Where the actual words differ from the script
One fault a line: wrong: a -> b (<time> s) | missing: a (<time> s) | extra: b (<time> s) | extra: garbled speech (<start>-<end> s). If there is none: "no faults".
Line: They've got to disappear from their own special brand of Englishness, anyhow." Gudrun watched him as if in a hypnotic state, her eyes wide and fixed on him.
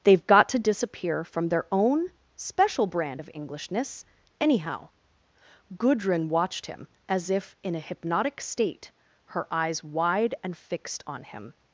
no faults